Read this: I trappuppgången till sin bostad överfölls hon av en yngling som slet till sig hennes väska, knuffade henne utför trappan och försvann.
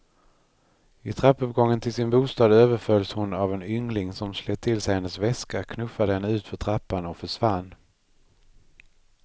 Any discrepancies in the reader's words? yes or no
no